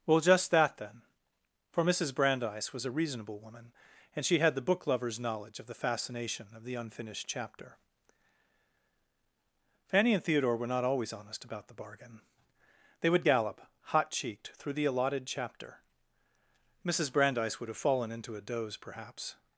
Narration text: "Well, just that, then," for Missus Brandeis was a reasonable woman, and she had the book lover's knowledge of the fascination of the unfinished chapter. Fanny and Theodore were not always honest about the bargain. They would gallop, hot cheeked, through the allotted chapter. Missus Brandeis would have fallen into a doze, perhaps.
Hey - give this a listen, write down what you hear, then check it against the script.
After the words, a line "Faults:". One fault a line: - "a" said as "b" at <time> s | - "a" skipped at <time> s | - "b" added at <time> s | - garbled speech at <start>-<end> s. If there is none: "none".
"Well, just that, then," for Missus Brandeis was a reasonable woman, and she had the book lover's knowledge of the fascination of the unfinished chapter. Fanny and Theodore were not always honest about the bargain. They would gallop, hot cheeked, through the allotted chapter. Missus Brandeis would have fallen into a doze, perhaps.
Faults:
none